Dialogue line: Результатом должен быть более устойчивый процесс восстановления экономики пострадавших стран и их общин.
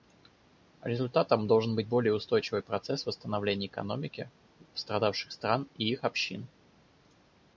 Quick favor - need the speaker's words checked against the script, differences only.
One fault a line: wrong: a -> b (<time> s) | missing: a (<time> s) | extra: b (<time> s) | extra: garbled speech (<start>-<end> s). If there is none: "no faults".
no faults